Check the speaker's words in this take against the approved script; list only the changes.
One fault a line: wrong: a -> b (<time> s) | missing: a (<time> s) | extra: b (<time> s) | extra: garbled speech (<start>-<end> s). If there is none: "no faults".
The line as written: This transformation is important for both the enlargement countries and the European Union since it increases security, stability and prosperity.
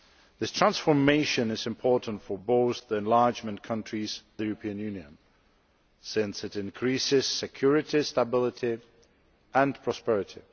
missing: and (4.2 s)